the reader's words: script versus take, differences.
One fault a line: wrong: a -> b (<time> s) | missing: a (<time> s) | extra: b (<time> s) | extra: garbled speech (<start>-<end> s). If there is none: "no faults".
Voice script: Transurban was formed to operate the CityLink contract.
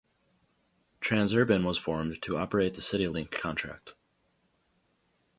no faults